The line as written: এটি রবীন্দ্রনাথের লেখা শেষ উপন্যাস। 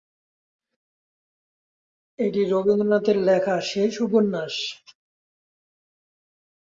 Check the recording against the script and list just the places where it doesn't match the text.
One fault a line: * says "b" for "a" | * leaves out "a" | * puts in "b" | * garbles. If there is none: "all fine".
all fine